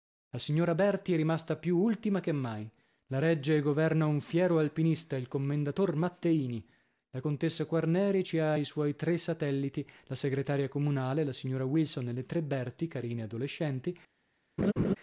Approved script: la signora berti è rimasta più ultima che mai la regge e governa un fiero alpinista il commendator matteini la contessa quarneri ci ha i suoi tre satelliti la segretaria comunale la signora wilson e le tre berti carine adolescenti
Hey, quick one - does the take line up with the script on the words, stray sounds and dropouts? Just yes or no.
no